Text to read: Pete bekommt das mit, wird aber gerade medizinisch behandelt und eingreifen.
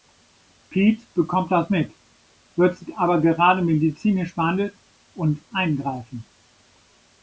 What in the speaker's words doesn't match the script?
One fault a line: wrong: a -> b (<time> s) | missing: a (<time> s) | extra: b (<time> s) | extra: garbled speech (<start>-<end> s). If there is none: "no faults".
no faults